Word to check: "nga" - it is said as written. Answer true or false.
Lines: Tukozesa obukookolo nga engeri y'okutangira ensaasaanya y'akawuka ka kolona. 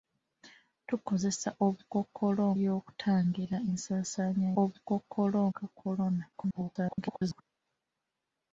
false